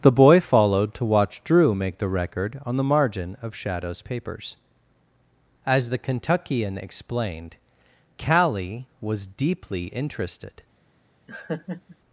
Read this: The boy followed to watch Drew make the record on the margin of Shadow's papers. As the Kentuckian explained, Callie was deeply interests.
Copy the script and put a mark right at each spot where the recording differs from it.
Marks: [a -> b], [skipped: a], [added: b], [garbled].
The boy followed to watch Drew make the record on the margin of Shadow's papers. As the Kentuckian explained, Callie was deeply [interests. -> interested]